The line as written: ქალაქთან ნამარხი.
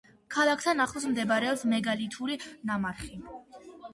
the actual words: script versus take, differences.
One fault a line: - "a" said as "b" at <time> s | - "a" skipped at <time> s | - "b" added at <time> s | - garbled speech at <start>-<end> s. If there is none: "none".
- "ახლოს მდებარეობს მეგალითური" added at 0.8 s